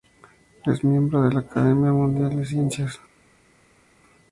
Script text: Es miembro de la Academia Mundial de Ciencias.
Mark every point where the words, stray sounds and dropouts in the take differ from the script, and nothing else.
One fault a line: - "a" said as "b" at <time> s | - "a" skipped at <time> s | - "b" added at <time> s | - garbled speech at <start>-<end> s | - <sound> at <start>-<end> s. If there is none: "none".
none